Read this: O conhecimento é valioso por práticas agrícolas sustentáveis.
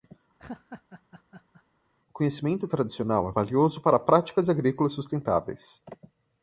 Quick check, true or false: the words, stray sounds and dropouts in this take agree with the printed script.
false